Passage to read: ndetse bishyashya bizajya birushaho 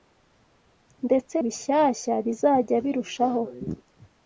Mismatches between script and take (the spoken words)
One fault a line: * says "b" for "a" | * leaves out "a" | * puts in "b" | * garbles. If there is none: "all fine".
all fine